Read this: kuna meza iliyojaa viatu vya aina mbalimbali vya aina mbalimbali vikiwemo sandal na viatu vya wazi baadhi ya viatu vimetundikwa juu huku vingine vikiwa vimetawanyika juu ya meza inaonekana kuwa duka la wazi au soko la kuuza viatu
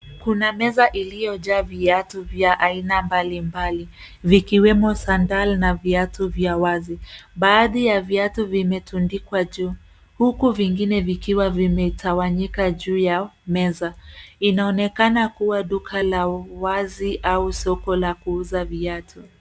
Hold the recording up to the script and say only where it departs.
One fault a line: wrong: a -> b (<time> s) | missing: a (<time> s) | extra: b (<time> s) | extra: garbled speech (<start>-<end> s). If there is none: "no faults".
missing: vya aina mbalimbali (3.9 s)